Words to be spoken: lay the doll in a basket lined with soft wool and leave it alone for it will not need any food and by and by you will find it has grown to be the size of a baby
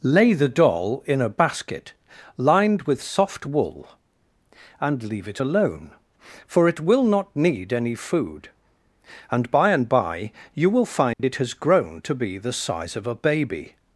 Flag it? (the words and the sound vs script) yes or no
yes